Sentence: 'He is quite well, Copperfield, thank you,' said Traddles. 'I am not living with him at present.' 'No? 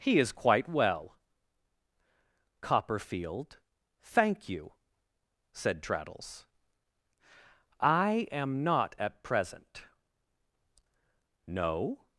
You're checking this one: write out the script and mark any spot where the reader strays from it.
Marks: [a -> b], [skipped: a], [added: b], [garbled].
'He is quite well, Copperfield, thank you,' said Traddles. 'I am not [skipped: living with him] at present.' 'No?